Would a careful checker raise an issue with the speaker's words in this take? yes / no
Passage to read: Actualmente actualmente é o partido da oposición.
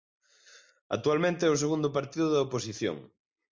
yes